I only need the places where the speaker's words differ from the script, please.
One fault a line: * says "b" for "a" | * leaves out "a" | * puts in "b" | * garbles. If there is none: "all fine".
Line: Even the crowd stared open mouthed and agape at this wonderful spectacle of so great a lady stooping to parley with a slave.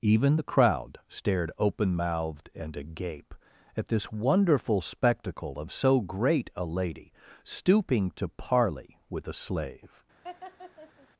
all fine